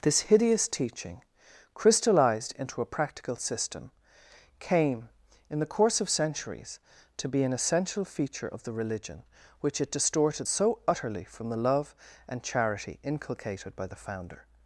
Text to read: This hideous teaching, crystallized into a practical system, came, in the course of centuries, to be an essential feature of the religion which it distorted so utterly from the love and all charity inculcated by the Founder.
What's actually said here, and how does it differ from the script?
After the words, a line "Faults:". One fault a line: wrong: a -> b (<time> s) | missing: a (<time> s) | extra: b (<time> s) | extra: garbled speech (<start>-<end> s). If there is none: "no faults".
This hideous teaching, crystallized into a practical system, came, in the course of centuries, to be an essential feature of the religion which it distorted so utterly from the love and charity inculcated by the Founder.
Faults:
missing: all (12.4 s)